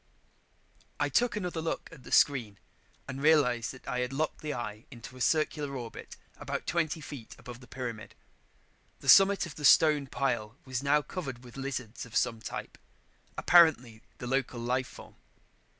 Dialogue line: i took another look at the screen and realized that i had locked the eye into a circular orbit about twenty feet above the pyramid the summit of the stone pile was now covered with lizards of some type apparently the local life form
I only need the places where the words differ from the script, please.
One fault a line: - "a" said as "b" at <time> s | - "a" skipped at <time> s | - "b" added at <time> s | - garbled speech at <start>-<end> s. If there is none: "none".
none